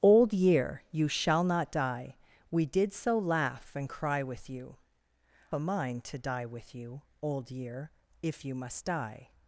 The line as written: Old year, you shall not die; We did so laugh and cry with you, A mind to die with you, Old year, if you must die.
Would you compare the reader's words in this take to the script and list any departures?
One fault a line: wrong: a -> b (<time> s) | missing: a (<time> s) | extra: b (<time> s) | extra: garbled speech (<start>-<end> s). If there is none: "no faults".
no faults